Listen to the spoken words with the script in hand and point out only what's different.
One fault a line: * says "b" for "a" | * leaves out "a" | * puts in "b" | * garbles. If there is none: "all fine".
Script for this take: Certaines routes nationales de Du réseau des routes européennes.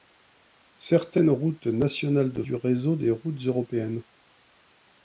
all fine